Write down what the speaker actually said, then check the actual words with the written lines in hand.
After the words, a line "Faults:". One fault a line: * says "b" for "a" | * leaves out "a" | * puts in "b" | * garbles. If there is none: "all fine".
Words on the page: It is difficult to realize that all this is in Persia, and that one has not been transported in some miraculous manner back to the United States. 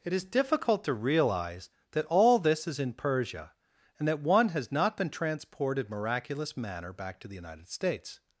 It is difficult to realize that all this is in Persia, and that one has not been transported miraculous manner back to the United States.
Faults:
* leaves out "in some"